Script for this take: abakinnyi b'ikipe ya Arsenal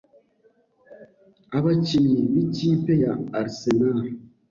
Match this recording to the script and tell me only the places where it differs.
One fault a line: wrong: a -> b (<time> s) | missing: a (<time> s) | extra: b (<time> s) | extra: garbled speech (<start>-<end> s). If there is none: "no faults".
no faults